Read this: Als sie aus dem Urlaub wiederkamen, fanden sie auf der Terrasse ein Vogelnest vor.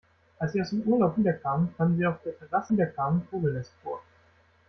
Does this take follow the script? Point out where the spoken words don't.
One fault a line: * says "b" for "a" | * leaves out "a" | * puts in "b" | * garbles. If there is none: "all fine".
* says "wiederkamen" for "ein"